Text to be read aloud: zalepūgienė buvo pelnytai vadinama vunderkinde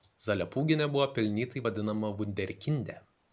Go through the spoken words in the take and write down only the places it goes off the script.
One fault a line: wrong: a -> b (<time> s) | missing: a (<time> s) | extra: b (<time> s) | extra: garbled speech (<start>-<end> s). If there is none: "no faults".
no faults